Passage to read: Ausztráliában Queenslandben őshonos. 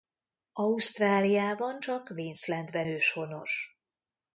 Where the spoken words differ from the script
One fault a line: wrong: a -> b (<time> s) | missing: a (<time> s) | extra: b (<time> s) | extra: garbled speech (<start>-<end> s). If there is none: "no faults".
extra: csak (1.8 s)